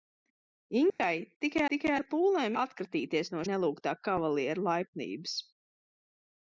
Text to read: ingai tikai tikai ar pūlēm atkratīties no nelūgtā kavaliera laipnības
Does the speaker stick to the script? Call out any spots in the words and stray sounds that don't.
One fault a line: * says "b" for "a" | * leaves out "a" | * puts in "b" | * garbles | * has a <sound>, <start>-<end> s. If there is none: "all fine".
* has a dropout, 0.9-1.0 s